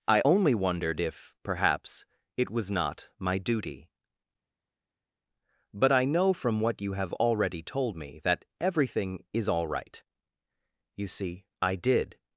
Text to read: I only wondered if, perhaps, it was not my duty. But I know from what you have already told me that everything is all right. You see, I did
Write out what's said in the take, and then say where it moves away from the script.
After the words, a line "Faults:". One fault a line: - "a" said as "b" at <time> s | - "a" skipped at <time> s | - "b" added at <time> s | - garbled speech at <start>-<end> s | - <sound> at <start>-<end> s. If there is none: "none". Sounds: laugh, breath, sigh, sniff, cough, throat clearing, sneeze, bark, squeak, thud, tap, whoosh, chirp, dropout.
I only wondered if, perhaps, it was not my duty. But I know from what you have already told me that everything is all right. You see, I did
Faults:
none